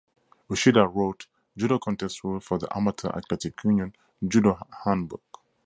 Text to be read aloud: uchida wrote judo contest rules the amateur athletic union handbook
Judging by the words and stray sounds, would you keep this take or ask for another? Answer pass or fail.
fail